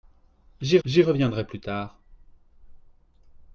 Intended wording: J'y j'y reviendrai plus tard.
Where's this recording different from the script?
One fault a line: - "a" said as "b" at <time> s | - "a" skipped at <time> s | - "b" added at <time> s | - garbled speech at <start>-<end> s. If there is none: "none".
none